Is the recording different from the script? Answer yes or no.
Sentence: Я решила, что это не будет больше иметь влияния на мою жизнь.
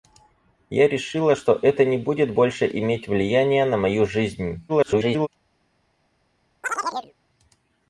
yes